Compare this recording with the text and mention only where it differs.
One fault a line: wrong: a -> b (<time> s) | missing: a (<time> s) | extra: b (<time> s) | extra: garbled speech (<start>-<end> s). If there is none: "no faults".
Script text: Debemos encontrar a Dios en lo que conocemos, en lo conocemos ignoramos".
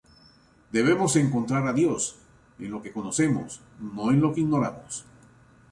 extra: no (3.8 s)
wrong: conocemos -> que (4.3 s)